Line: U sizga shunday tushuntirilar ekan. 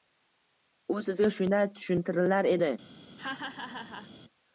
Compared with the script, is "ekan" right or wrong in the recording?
wrong